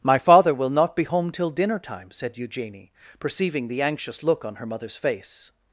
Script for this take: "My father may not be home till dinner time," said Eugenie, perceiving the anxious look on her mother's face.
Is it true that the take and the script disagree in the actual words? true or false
true